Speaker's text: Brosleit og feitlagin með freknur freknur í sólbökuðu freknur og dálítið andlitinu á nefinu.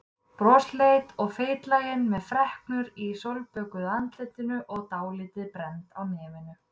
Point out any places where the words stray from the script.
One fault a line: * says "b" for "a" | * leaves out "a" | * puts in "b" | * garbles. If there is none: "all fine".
* leaves out "freknur"
* says "andlitinu" for "freknur"
* says "brennd" for "andlitinu"